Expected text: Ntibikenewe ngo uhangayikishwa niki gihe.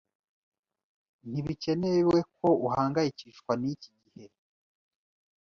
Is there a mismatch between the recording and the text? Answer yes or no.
yes